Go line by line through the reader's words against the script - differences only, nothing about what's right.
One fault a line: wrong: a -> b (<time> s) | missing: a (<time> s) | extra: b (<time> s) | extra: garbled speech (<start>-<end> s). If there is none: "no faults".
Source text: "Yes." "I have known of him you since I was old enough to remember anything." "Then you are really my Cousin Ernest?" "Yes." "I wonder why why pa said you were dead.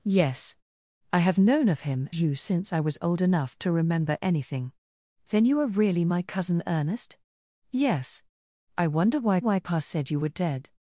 no faults